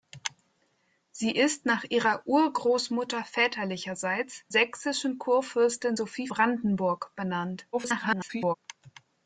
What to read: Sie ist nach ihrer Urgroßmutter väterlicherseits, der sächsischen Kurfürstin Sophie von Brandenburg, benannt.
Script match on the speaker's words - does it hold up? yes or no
no